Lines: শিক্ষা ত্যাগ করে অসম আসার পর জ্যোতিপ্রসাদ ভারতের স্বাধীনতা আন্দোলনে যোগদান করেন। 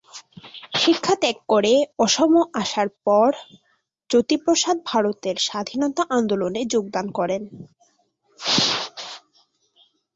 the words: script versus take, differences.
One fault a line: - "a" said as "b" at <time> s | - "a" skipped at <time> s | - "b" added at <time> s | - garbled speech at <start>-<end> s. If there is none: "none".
none